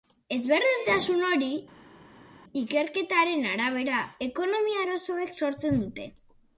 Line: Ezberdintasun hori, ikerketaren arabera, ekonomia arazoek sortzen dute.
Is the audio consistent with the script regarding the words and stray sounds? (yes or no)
yes